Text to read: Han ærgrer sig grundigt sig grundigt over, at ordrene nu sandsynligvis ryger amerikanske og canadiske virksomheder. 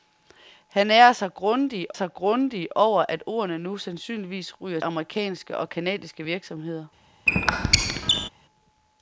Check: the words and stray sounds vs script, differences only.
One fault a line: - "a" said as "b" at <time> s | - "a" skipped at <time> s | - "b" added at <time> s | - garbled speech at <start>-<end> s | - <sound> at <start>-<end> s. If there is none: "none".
- squeak at 7.3-8.3 s